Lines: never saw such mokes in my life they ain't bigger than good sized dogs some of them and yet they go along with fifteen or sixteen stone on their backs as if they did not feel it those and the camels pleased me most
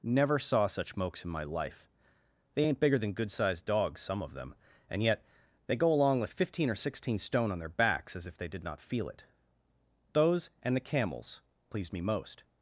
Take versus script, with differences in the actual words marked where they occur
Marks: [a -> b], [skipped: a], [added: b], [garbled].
never saw such mokes in my life they ain't bigger than good sized dogs some of them and yet they go along with fifteen or sixteen stone on their backs as if they did not feel it those and the camels pleased me most